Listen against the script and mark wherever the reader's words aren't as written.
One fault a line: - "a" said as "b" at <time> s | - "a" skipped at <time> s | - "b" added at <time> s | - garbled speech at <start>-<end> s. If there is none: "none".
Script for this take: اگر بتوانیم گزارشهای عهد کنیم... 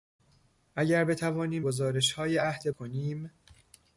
none